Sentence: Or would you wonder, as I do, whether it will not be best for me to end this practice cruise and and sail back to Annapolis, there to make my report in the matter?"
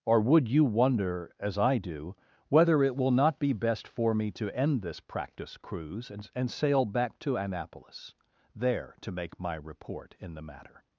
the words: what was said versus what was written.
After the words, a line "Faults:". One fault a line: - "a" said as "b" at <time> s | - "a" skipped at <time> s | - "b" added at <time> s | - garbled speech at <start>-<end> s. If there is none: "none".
Or would you wonder, as I do, whether it will not be best for me to end this practice cruise and and sail back to Annapolis, there to make my report in the matter?"
Faults:
none